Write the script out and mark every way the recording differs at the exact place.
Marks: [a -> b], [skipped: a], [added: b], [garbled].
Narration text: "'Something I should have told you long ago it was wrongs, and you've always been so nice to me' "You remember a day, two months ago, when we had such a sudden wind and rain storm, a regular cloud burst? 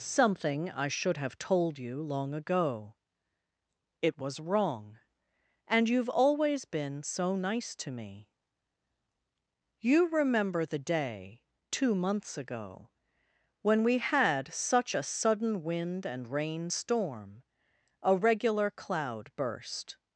"'Something I should have told you long ago it was [wrongs, -> wrong] and you've always been so nice to me' "You remember [a -> the] day, two months ago, when we had such a sudden wind and rain storm, a regular cloud burst?